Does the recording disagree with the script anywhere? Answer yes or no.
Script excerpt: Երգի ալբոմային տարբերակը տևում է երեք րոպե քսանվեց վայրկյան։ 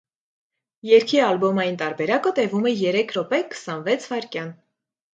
no